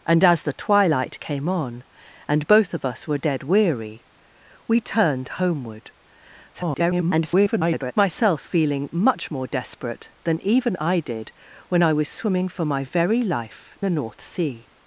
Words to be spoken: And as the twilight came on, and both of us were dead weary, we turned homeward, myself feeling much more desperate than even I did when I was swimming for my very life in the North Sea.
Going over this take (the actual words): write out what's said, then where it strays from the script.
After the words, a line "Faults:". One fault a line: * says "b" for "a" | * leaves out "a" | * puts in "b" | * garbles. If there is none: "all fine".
And as the twilight came on, and both of us were dead weary, we turned homeward, [garbled] myself feeling much more desperate than even I did when I was swimming for my very life the North Sea.
Faults:
* garbles
* leaves out "in"